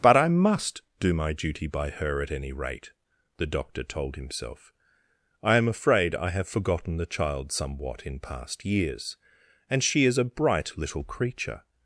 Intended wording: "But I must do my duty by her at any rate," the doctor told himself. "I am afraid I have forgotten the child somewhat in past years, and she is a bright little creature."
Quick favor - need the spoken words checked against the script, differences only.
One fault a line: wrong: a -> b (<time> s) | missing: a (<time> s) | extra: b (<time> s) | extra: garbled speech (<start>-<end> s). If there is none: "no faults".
no faults